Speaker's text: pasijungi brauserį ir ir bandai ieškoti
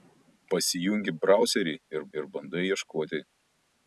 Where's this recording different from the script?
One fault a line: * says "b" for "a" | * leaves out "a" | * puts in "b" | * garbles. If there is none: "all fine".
all fine